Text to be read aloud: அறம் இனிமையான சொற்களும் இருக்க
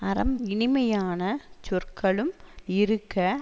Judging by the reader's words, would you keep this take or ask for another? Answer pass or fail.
pass